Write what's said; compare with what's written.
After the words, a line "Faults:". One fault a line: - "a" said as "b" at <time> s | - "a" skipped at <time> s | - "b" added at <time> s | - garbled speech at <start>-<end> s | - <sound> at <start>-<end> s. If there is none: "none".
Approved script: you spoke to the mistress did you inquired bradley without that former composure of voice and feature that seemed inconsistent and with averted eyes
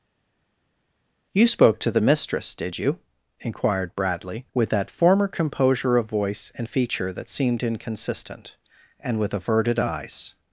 you spoke to the mistress did you inquired bradley with that former composure of voice and feature that seemed inconsistent and with averted eyes
Faults:
- "without" said as "with" at 4.5 s